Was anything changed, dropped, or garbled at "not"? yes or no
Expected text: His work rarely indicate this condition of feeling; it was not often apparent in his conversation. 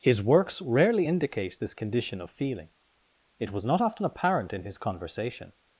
no